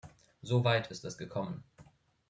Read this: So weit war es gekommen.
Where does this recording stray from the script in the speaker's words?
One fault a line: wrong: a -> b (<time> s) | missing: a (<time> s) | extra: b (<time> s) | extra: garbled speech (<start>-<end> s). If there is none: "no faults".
wrong: war -> ist (0.9 s)